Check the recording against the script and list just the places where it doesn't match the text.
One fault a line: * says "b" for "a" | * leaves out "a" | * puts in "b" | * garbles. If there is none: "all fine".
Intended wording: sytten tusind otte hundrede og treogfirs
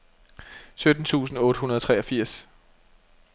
all fine